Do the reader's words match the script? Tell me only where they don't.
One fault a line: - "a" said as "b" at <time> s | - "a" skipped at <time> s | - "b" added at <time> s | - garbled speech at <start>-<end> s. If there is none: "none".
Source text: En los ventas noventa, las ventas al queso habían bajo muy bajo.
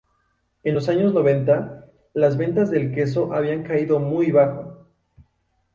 - "ventas" said as "años" at 0.9 s
- "al" said as "del" at 2.7 s
- "bajo" said as "caído" at 3.6 s